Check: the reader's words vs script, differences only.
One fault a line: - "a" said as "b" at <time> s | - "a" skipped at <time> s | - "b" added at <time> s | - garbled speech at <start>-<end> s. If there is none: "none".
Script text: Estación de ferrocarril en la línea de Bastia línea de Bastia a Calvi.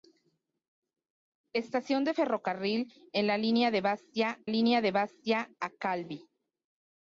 none